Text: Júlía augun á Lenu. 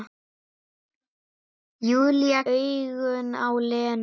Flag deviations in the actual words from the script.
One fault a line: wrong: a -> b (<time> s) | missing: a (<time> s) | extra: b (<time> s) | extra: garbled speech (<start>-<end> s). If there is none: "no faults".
no faults